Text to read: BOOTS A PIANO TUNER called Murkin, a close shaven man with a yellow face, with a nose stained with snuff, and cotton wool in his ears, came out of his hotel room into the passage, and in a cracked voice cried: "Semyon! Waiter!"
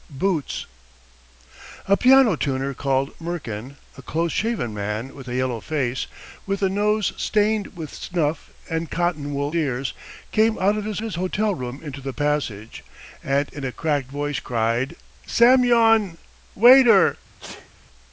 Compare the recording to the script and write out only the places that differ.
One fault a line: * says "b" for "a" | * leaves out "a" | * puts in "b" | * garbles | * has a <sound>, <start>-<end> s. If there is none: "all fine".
* leaves out "in his"
* puts in "his"
* has a sneeze, 17.4-17.7 s